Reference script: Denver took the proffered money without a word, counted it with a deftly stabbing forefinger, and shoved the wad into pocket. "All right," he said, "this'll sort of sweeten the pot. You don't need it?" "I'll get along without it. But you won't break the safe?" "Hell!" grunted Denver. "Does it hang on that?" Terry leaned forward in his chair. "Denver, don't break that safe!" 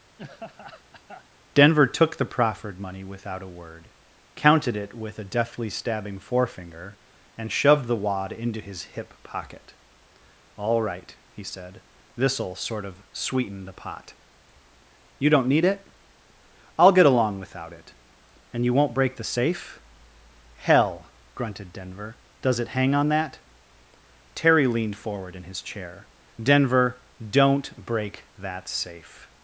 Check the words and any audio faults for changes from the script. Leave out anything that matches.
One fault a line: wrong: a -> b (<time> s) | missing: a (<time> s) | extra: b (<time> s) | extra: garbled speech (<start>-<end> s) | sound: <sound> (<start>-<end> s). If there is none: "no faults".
sound: laugh (0.2-1.2 s)
extra: his hip (8.6 s)
wrong: But -> And (18.5 s)